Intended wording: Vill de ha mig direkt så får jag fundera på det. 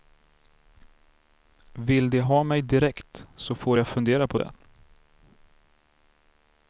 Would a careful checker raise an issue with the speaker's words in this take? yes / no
no